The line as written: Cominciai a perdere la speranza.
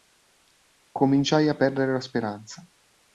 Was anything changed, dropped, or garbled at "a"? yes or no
no